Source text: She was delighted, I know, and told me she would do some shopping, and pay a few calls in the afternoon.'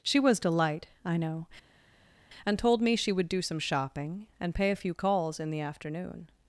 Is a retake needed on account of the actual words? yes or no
yes